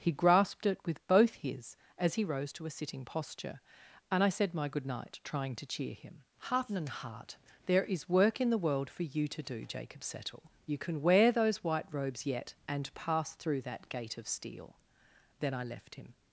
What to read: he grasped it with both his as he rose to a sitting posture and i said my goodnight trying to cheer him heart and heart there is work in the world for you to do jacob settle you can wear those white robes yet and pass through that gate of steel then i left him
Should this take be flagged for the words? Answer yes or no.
no